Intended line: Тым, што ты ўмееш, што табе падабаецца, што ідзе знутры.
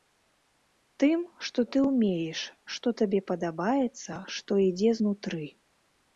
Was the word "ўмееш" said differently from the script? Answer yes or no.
no